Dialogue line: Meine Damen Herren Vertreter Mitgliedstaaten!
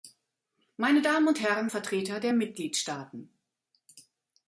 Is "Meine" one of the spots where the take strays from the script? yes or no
no